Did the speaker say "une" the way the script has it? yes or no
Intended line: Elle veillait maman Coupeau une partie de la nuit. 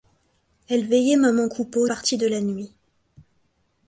no